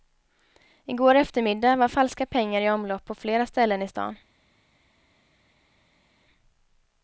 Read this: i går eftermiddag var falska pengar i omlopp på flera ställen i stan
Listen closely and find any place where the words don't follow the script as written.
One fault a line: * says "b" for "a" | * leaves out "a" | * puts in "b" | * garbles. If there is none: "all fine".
all fine